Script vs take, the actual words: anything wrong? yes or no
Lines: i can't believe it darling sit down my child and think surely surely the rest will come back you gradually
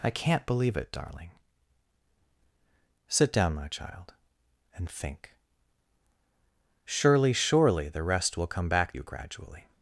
no